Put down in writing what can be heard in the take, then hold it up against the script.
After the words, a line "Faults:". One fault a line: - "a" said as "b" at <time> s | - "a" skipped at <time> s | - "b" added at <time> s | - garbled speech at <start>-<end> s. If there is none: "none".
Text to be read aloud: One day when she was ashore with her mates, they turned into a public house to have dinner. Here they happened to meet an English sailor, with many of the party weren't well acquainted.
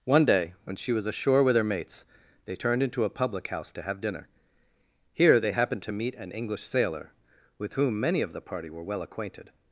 One day when she was ashore with her mates, they turned into a public house to have dinner. Here they happened to meet an English sailor, with whom many of the party were well acquainted.
Faults:
- "whom" added at 7.7 s
- "weren't" said as "were" at 8.7 s